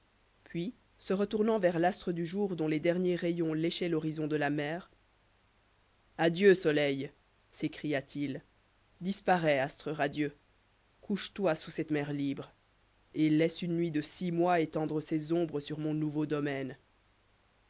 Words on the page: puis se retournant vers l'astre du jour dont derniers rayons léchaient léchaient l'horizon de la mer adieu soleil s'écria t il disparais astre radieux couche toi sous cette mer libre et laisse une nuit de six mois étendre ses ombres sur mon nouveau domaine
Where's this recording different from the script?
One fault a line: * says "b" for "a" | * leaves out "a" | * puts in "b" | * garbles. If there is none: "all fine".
* puts in "les"
* leaves out "léchaient"